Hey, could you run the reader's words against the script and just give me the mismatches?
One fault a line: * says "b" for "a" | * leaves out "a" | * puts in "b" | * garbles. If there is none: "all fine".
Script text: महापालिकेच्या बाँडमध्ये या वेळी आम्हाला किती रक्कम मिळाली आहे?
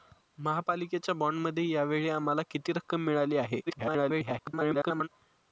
* garbles